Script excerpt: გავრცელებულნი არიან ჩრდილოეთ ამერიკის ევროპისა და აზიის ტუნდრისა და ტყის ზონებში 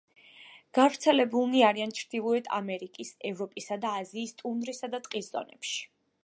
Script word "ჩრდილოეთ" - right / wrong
right